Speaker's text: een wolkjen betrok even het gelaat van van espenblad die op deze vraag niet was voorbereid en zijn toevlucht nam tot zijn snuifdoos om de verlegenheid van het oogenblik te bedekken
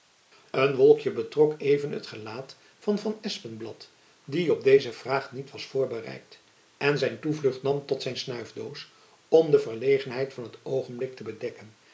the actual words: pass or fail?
pass